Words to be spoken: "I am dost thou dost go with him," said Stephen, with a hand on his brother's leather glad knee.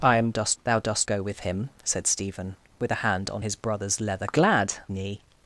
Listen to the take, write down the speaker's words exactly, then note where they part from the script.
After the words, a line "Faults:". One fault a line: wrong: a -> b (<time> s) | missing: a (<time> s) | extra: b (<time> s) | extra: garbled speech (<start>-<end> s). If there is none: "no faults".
"I am dost thou dost go with him," said Stephen, with a hand on his brother's leather glad knee.
Faults:
no faults